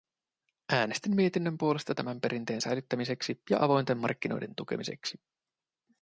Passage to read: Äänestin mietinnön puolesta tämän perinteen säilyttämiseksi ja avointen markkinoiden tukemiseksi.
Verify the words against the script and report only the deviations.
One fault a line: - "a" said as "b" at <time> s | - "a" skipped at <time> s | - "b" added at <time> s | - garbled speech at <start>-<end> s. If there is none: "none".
none